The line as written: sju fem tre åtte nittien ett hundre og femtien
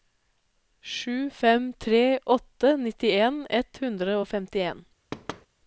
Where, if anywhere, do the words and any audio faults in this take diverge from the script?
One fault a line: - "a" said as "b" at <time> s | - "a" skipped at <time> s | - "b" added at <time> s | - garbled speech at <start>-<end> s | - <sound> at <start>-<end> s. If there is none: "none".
- thud at 5.1-5.5 s